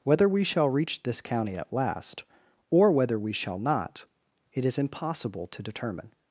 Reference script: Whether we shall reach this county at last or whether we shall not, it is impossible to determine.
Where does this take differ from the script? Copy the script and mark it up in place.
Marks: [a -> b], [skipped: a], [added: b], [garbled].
Whether we shall reach this county at last or whether we shall not, it is impossible to determine.